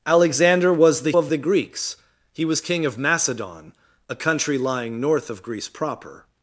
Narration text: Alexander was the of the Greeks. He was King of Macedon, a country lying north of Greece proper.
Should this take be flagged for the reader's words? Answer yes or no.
no